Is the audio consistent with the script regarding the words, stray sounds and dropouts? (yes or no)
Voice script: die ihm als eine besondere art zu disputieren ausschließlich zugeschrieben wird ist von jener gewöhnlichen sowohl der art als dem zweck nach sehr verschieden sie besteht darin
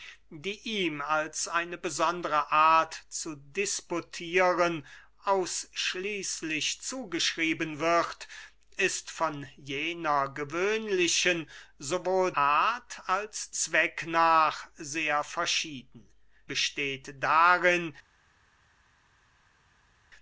no